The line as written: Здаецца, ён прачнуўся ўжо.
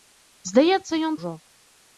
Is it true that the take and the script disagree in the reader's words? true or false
true